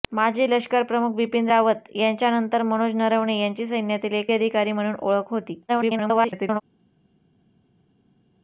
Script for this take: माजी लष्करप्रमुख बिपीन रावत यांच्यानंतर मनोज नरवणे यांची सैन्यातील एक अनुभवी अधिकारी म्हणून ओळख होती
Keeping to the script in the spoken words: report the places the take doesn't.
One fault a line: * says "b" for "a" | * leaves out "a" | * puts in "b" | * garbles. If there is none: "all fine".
* leaves out "अनुभवी"
* garbles